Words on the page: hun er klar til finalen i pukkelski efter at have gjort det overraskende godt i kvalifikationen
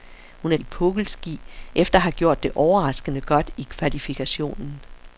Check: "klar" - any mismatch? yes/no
yes